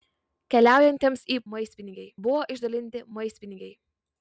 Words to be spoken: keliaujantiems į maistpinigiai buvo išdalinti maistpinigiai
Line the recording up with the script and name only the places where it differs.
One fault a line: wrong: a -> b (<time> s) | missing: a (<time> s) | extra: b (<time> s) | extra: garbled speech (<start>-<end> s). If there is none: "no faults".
no faults